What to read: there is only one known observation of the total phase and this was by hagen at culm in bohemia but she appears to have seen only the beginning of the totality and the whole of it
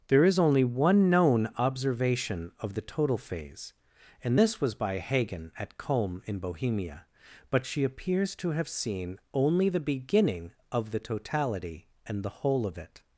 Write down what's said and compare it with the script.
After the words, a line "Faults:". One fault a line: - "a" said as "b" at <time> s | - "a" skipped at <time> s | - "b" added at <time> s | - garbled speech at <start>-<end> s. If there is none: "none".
there is only one known observation of the total phase and this was by hagen at culm in bohemia but she appears to have seen only the beginning of the totality and the whole of it
Faults:
none